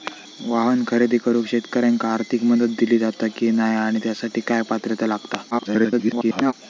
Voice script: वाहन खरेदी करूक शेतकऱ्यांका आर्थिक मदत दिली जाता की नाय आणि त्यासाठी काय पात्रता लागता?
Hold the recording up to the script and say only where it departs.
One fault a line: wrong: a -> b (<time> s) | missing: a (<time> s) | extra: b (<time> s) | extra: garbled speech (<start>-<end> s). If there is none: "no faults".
extra: garbled speech (5.5-6.5 s)